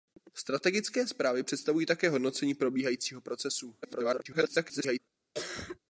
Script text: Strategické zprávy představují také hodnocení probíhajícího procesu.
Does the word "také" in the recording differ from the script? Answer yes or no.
no